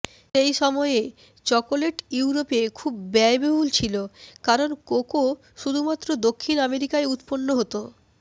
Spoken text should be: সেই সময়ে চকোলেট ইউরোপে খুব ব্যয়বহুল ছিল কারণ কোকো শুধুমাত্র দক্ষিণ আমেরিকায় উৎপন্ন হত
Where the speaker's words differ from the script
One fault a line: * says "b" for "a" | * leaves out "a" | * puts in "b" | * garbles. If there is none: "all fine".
all fine